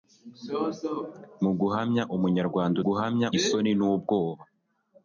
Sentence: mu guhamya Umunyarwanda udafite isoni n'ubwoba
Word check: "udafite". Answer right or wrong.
wrong